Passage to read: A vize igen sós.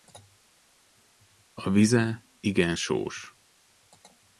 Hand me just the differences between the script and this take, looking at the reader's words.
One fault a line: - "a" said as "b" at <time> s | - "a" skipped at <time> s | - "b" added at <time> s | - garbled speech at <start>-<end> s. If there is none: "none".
none